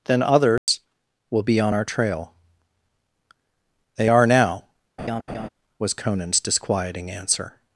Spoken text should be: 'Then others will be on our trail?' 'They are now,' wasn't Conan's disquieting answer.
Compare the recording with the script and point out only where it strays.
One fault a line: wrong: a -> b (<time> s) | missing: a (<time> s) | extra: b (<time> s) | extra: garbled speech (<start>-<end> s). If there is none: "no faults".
wrong: wasn't -> was (5.8 s)